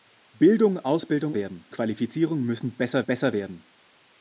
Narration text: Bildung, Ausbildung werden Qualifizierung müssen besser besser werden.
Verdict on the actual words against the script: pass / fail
pass